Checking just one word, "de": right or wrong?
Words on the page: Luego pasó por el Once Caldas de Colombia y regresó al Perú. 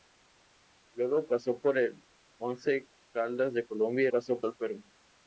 right